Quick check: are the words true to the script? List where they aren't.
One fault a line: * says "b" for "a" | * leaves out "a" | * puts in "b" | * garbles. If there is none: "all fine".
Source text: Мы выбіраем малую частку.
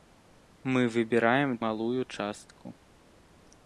all fine